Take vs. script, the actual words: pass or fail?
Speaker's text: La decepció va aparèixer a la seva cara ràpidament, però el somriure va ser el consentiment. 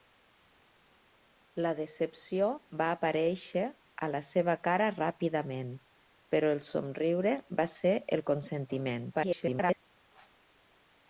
fail